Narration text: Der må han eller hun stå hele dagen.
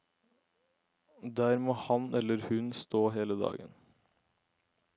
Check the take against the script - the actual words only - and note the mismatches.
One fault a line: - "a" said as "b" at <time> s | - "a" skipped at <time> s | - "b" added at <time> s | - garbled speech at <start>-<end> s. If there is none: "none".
none